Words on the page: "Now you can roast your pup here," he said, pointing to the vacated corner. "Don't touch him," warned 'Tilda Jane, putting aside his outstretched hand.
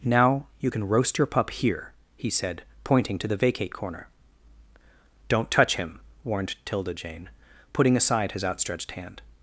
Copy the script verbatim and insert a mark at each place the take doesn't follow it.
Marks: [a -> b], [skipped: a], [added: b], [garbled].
"Now you can roast your pup here," he said, pointing to the [vacated -> vacate] corner. "Don't touch him," warned 'Tilda Jane, putting aside his outstretched hand.